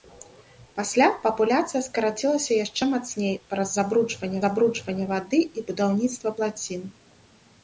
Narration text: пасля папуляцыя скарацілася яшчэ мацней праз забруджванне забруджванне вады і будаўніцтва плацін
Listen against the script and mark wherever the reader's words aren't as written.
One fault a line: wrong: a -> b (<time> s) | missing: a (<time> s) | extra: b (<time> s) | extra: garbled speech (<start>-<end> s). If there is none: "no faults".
no faults